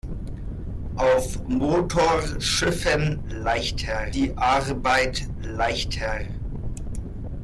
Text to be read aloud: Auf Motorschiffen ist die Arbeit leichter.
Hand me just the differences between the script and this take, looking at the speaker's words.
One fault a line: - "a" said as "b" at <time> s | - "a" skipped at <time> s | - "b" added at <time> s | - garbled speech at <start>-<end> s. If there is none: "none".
- "ist" said as "leichter" at 3.3 s